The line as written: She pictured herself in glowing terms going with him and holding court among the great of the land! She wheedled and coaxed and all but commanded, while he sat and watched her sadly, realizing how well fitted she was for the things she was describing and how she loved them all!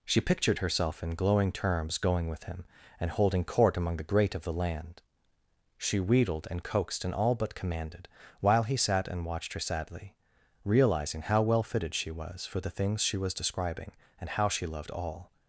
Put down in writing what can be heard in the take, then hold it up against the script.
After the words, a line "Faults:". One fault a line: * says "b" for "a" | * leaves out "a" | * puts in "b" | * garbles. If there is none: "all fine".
She pictured herself in glowing terms going with him and holding court among the great of the land! She wheedled and coaxed and all but commanded, while he sat and watched her sadly, realizing how well fitted she was for the things she was describing and how she loved all!
Faults:
* leaves out "them"